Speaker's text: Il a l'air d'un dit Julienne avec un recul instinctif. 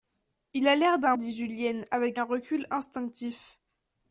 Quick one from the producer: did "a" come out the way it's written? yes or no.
yes